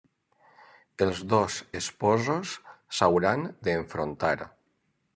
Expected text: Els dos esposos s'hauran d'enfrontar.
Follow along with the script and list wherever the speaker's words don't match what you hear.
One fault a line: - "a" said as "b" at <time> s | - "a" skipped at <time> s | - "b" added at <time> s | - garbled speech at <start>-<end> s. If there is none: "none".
none